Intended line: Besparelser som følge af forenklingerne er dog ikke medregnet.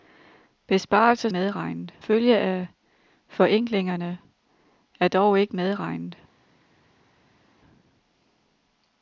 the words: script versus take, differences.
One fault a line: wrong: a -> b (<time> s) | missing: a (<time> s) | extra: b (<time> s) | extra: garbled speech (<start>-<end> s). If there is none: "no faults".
wrong: som -> medregnet (1.3 s)